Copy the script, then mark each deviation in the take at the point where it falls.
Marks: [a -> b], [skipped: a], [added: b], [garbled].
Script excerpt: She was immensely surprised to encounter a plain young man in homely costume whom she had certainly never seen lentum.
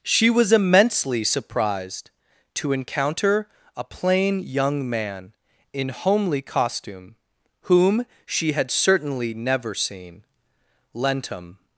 She was immensely surprised to encounter a plain young man in homely costume whom she had certainly never seen lentum.